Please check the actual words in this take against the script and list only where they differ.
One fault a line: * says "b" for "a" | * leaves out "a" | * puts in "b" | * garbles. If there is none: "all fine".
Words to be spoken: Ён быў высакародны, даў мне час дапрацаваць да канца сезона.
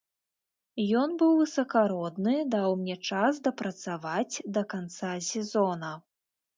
all fine